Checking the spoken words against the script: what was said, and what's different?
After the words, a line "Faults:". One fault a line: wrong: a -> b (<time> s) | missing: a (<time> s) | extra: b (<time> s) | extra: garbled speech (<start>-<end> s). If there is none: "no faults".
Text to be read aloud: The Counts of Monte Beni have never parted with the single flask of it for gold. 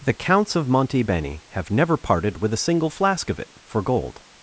The Counts of Monte Beni have never parted with a single flask of it for gold.
Faults:
wrong: the -> a (2.5 s)